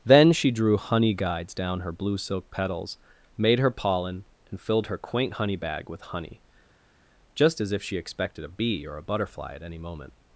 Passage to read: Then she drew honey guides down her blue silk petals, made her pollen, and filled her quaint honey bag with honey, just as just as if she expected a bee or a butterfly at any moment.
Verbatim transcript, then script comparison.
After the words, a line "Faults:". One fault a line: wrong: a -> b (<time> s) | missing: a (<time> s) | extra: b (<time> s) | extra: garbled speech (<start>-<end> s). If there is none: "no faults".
Then she drew honey guides down her blue silk petals, made her pollen, and filled her quaint honey bag with honey, just as if she expected a bee or a butterfly at any moment.
Faults:
missing: just as (7.7 s)